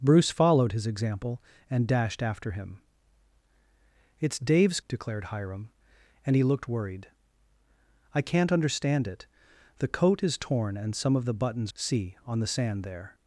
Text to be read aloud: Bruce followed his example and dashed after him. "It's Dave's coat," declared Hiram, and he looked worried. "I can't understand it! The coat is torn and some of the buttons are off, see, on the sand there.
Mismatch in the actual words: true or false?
true